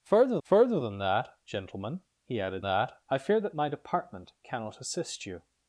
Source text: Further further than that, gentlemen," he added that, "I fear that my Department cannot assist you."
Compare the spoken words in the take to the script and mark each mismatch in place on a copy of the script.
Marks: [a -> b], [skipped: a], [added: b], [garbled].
Further further than that, gentlemen," he added that, "I fear that my Department cannot assist you."